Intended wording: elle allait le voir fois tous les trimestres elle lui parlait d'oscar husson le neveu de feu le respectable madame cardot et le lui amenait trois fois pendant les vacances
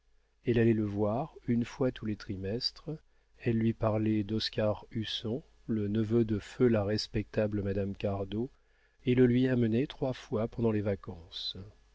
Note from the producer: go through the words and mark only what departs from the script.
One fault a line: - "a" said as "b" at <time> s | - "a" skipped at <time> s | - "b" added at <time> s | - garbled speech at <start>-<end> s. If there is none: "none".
- "une" added at 1.5 s
- "le" said as "la" at 6.7 s